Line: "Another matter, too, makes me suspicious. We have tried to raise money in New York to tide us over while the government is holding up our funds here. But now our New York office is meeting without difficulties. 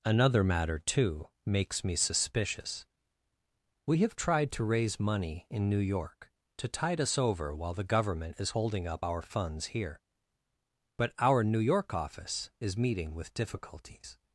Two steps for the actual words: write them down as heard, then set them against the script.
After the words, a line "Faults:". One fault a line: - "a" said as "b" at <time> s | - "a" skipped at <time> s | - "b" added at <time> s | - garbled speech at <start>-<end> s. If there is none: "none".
"Another matter, too, makes me suspicious. We have tried to raise money in New York to tide us over while the government is holding up our funds here. But our New York office is meeting with difficulties.
Faults:
- "now" skipped at 11.1 s
- "without" said as "with" at 13.1 s